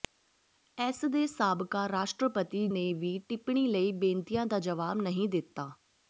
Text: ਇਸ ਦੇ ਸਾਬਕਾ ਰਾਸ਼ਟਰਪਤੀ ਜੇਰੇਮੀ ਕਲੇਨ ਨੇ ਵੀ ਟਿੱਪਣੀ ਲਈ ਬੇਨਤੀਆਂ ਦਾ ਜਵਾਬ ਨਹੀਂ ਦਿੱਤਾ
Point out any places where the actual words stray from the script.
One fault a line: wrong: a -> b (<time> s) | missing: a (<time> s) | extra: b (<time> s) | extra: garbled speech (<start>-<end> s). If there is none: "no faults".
missing: ਜੇਰੇਮੀ ਕਲੇਨ (2.7 s)